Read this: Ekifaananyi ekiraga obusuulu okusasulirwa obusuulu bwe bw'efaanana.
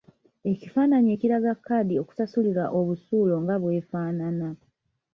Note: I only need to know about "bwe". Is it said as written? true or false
false